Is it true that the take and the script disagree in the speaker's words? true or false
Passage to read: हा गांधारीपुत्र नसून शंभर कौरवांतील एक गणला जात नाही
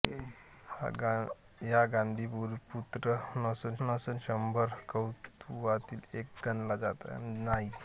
true